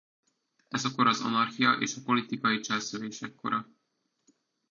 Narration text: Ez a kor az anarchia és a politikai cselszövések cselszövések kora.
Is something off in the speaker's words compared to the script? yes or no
yes